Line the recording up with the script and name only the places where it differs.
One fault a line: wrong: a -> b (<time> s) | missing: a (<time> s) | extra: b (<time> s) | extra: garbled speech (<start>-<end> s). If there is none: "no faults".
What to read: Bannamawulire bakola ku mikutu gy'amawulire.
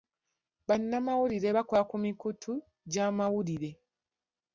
no faults